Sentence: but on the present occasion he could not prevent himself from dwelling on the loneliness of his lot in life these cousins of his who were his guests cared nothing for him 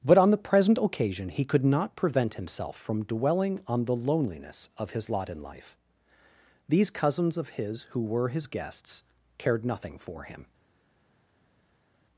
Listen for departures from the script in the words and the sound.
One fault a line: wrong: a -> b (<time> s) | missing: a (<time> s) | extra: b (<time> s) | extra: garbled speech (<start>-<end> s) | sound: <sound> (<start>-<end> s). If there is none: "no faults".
no faults